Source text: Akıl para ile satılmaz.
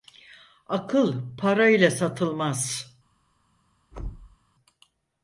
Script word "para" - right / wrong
right